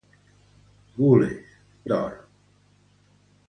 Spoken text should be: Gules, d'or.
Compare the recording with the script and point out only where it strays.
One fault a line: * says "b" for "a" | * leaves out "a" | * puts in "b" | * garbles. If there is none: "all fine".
all fine